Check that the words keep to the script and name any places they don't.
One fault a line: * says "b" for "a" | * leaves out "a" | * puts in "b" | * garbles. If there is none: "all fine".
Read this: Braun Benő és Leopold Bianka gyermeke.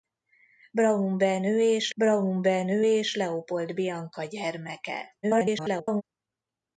* puts in "braun Benő és"
* garbles